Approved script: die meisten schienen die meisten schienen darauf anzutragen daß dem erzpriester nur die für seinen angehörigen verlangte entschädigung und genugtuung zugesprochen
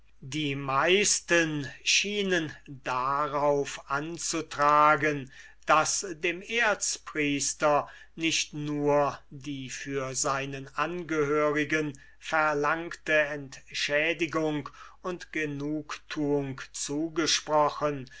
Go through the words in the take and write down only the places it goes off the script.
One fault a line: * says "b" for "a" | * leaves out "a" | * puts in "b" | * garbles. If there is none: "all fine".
* leaves out "die meisten schienen"
* puts in "nicht"